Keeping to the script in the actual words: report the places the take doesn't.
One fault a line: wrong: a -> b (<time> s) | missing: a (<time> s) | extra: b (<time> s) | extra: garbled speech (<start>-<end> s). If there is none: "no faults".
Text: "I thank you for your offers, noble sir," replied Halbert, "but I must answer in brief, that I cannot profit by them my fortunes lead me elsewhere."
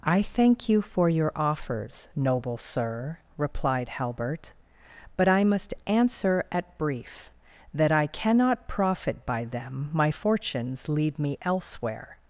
wrong: in -> at (6.5 s)